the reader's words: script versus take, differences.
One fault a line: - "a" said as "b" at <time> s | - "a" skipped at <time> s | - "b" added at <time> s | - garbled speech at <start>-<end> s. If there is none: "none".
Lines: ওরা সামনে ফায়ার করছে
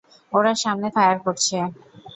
none